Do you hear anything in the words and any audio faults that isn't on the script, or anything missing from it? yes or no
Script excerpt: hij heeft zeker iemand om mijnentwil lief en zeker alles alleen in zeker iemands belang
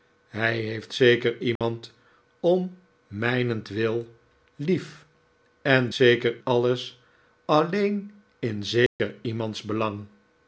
yes